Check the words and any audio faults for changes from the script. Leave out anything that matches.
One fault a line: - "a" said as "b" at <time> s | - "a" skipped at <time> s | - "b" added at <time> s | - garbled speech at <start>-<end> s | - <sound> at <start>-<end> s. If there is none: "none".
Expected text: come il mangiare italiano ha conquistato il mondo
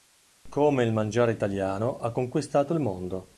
none